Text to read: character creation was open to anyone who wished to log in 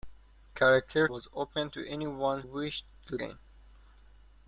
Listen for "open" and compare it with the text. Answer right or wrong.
right